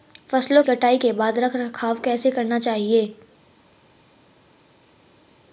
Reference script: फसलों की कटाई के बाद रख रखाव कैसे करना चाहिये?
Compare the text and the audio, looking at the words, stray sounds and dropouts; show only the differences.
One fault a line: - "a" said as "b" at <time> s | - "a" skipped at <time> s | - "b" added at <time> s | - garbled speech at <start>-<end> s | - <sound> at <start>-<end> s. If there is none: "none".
- "की" skipped at 0.6 s